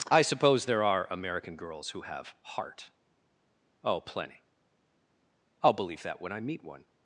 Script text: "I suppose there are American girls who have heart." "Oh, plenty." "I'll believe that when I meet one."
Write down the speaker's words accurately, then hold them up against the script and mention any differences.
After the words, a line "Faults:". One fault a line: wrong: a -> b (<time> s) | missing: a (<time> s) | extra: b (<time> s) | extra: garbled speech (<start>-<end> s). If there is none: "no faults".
"I suppose there are American girls who have heart." "Oh, plenty." "I'll believe that when I meet one."
Faults:
no faults